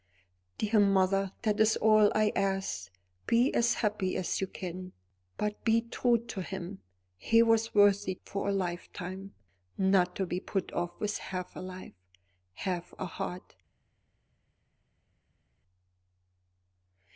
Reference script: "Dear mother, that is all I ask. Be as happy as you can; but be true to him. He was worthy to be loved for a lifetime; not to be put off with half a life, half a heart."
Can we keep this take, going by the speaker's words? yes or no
no